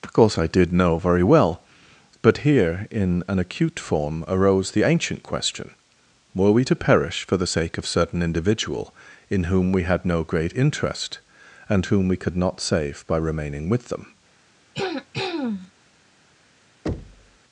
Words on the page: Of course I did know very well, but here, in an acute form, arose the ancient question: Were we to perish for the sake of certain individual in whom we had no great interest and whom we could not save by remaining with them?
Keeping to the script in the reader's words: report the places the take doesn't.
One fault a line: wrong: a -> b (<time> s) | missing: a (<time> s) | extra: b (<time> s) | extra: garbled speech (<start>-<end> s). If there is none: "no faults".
no faults